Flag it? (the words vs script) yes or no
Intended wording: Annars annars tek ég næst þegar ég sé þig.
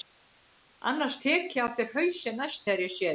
yes